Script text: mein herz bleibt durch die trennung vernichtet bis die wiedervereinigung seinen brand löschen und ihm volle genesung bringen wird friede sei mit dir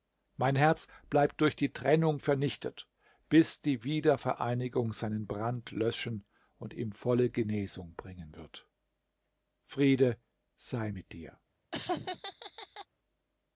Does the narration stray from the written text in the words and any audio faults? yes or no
yes